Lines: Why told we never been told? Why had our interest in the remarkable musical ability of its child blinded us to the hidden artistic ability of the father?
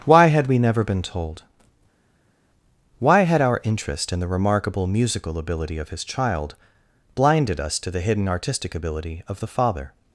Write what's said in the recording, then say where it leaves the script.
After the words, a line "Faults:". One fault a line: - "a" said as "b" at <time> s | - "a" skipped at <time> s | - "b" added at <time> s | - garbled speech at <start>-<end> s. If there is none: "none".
Why had we never been told? Why had our interest in the remarkable musical ability of his child blinded us to the hidden artistic ability of the father?
Faults:
- "told" said as "had" at 0.3 s
- "its" said as "his" at 5.9 s